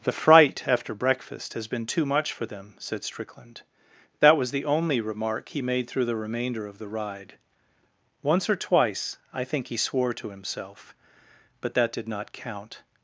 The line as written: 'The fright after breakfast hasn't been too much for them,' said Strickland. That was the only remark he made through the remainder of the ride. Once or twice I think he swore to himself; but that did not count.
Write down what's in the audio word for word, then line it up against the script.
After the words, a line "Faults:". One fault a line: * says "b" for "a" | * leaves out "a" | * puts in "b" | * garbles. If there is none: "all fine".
'The fright after breakfast has been too much for them,' said Strickland. That was the only remark he made through the remainder of the ride. Once or twice I think he swore to himself; but that did not count.
Faults:
* says "has" for "hasn't"